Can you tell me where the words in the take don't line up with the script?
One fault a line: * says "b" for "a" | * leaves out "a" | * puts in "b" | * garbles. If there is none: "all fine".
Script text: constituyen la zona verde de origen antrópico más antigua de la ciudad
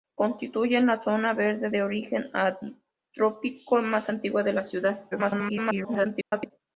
* garbles